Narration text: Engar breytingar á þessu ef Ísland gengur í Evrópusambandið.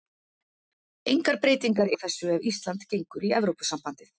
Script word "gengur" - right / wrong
right